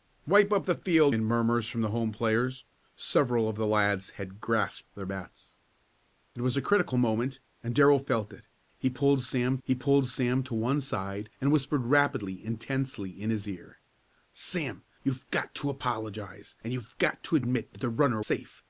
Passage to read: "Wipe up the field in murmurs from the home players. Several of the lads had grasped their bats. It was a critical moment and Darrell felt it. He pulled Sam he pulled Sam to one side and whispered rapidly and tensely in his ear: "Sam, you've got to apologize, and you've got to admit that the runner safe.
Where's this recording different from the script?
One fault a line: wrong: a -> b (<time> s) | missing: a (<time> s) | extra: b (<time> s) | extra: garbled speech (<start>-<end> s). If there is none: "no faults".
no faults